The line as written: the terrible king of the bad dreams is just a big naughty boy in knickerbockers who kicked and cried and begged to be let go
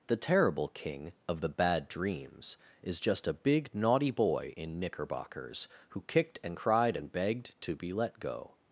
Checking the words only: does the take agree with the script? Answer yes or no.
yes